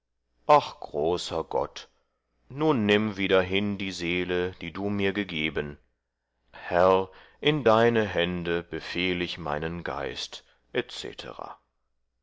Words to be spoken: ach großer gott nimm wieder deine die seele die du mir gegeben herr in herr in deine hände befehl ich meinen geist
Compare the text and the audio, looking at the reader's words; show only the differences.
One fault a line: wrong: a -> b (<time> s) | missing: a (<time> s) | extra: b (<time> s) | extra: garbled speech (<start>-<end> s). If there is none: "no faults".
extra: nun (2.5 s)
wrong: deine -> hin (3.4 s)
missing: herr in (7.7 s)